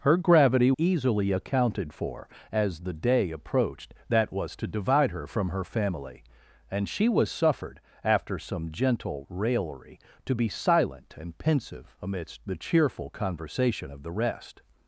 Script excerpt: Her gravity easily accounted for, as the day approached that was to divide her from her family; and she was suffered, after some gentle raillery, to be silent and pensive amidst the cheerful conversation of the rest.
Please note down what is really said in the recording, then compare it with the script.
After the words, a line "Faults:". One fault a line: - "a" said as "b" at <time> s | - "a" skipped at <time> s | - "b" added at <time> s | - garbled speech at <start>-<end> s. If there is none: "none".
Her gravity easily accounted for, as the day approached that was to divide her from her family; and she was suffered, after some gentle raillery, to be silent and pensive amidst the cheerful conversation of the rest.
Faults:
none